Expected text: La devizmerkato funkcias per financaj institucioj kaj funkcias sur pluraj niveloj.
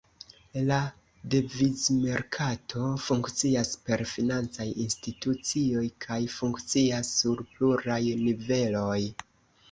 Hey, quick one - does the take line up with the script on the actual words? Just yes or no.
yes